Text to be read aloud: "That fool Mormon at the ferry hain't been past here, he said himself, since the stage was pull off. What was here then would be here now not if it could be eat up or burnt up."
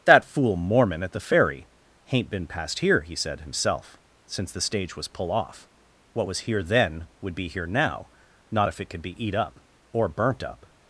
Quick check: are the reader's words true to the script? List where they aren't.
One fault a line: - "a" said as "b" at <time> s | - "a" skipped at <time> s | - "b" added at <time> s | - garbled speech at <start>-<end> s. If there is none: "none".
none